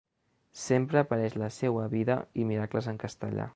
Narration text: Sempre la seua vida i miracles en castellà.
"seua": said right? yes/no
yes